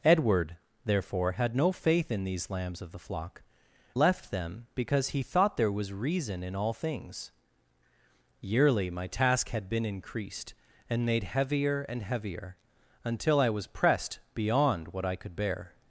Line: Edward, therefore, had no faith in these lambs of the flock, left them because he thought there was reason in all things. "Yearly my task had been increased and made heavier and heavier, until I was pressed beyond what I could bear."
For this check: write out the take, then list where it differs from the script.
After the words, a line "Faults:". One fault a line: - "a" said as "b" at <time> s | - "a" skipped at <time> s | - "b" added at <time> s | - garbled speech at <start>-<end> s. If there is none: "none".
Edward, therefore, had no faith in these lambs of the flock, left them because he thought there was reason in all things. "Yearly my task had been increased and made heavier and heavier, until I was pressed beyond what I could bear."
Faults:
none